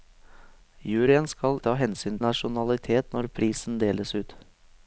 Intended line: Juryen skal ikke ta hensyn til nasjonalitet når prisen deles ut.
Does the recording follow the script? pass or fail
fail